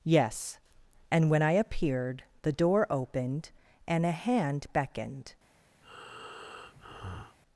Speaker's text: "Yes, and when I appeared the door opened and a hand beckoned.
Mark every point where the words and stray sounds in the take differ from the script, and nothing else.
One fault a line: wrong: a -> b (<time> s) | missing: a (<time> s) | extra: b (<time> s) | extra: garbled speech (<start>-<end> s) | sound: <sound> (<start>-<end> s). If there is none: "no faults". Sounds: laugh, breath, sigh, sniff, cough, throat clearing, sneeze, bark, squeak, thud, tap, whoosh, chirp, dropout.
sound: breath (5.8-7.4 s)